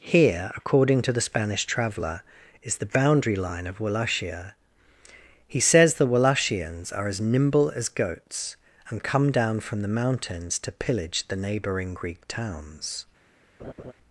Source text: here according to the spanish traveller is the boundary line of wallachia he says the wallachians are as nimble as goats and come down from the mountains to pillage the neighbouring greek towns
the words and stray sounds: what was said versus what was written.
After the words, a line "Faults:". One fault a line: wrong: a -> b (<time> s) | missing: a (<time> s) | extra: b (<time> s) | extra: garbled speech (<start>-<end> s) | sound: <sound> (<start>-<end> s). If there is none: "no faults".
here according to the spanish traveller is the boundary line of wallachia he says the wallachians are as nimble as goats and come down from the mountains to pillage the neighbouring greek towns
Faults:
sound: laugh (13.6-13.9 s)